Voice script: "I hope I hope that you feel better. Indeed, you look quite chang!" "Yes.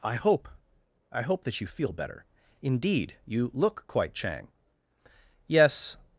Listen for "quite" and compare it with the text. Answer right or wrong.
right